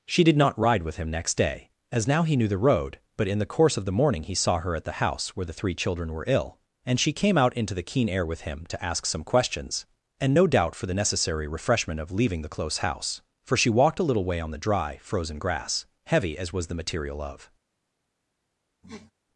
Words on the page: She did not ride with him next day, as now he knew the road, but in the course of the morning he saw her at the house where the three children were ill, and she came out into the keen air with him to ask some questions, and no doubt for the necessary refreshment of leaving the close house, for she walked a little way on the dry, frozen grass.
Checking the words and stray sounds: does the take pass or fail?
fail